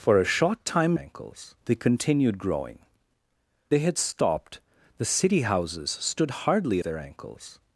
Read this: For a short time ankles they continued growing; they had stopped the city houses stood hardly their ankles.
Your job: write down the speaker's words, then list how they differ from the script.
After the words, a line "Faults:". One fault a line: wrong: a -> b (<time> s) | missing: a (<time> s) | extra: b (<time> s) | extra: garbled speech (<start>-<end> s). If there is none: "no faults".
For a short time ankles they continued growing; they had stopped the city houses stood hardly their ankles.
Faults:
no faults